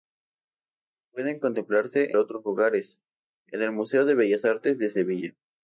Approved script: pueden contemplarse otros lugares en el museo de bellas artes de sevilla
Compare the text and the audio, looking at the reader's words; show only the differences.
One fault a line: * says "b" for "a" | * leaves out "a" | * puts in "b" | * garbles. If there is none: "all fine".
all fine